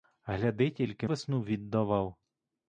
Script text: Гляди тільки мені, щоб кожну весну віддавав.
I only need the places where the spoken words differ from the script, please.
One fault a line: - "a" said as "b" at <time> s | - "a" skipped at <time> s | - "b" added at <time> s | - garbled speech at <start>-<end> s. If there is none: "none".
- "мені щоб кожну" skipped at 1.1 s